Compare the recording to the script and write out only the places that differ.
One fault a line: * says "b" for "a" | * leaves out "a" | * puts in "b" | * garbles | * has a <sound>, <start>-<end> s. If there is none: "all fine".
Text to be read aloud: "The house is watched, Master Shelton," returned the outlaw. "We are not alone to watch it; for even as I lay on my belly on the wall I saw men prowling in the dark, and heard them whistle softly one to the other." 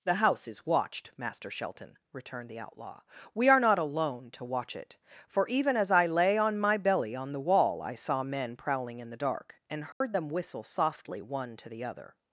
* has a dropout, 9.9-10.0 s